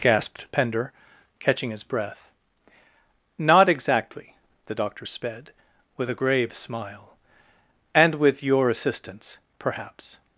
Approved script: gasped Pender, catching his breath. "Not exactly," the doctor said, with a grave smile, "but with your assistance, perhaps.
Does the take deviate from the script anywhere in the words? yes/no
yes